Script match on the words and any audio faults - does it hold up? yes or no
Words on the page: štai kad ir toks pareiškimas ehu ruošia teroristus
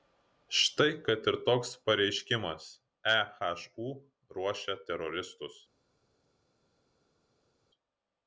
yes